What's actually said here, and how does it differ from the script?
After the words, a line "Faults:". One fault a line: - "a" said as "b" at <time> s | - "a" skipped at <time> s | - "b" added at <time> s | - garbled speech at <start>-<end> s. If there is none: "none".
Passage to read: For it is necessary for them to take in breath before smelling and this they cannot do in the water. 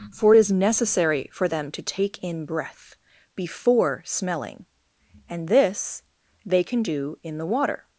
For it is necessary for them to take in breath before smelling and this they can do in the water.
Faults:
- "cannot" said as "can" at 6.6 s